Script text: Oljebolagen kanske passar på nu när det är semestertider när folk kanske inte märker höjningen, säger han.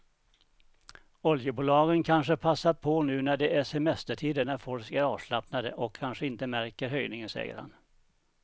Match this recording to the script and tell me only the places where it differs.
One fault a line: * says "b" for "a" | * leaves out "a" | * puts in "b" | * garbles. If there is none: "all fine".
* puts in "är avslappnade och"